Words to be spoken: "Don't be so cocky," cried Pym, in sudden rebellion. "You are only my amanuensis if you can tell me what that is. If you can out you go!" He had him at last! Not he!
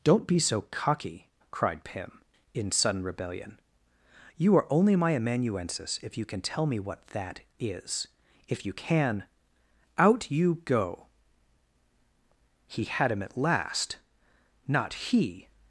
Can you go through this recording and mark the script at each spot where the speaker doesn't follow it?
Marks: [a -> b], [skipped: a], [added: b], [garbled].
"Don't be so cocky," cried Pym, in sudden rebellion. "You are only my amanuensis if you can tell me what that is. If you can out you go!" He had him at last! Not he!